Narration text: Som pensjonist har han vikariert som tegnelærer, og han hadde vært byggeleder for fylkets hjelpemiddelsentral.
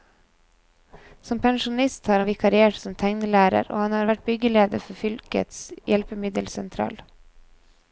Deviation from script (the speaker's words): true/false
true